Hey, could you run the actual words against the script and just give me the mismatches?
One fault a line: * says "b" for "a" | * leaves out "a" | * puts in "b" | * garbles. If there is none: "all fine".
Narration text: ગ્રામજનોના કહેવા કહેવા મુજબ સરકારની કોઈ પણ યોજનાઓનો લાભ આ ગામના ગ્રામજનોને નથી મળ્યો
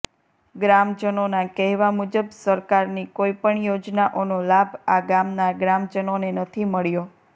* leaves out "કહેવા"